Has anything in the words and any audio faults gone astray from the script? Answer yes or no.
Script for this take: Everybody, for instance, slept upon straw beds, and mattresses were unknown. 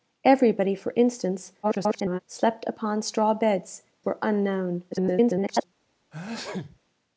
yes